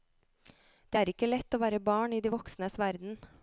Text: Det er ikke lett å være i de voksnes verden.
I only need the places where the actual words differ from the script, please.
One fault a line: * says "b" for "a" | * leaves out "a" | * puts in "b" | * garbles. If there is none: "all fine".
* puts in "barn"